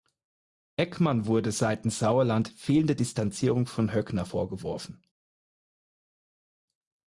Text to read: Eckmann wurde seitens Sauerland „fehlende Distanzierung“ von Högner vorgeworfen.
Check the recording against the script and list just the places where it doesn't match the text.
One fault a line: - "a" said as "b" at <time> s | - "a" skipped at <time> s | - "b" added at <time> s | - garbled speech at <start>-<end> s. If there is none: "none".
none